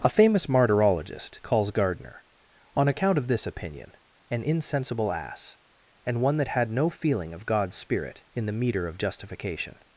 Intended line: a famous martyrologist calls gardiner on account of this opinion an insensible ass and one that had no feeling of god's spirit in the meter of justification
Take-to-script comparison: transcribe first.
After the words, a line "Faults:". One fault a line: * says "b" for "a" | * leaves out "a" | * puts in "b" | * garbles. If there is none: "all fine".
a famous martyrologist calls gardiner on account of this opinion an insensible ass and one that had no feeling of god's spirit in the meter of justification
Faults:
all fine